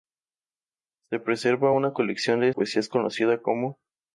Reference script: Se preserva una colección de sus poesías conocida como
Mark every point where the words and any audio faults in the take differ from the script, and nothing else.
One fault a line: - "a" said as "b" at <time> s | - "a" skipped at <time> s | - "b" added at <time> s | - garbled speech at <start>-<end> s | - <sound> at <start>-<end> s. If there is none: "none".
- "sus" skipped at 2.5 s